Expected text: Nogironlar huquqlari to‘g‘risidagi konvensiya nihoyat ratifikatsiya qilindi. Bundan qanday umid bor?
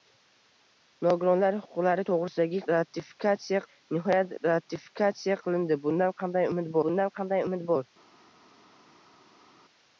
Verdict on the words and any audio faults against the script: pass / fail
fail